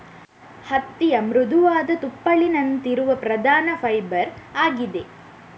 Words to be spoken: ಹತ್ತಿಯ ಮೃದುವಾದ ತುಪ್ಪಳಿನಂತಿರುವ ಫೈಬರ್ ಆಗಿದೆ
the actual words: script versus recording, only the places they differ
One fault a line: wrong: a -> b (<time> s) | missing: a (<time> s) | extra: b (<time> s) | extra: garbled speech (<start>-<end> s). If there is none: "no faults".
extra: ಪ್ರಧಾನ (3.2 s)